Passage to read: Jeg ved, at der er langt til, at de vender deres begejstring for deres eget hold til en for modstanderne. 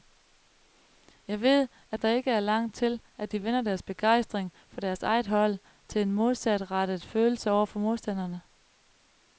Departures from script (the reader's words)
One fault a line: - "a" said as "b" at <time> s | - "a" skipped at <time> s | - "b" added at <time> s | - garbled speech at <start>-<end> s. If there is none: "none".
- "ikke" added at 2.1 s
- "modsatrettet følelse over" added at 6.1 s